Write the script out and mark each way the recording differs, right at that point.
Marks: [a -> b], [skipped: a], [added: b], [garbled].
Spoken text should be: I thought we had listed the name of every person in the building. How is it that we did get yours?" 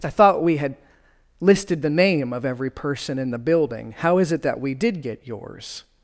I thought we had listed the name of every person in the building. How is it that we did get yours?"